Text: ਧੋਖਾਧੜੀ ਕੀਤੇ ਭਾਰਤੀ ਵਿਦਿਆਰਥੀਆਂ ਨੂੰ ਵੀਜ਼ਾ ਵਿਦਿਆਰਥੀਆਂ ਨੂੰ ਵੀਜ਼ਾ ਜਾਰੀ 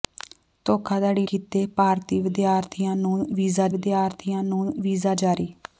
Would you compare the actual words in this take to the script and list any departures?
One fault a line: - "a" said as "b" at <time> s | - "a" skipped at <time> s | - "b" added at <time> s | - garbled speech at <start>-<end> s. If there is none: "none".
none